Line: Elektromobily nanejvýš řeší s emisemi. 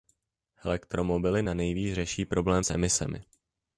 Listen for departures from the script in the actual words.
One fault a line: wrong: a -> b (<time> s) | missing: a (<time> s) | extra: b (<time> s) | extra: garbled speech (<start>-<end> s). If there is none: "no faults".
extra: problém (2.3 s)